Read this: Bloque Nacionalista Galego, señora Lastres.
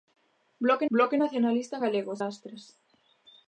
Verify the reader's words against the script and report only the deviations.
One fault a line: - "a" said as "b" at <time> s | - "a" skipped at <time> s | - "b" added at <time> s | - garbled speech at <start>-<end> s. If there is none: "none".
- "bloque" added at 0.9 s
- "señora" skipped at 2.1 s